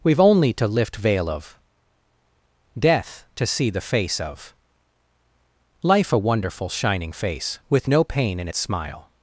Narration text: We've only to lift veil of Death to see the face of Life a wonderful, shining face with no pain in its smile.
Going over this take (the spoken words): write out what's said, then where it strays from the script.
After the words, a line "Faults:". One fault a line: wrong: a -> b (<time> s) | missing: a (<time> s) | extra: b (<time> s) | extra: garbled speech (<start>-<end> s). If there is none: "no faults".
We've only to lift veil of Death to see the face of Life a wonderful, shining face with no pain in its smile.
Faults:
no faults